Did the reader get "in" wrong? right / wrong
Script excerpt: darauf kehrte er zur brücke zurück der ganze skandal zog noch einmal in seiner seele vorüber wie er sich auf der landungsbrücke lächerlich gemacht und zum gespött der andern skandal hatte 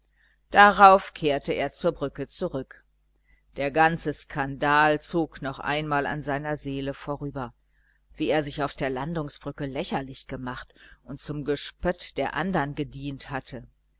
wrong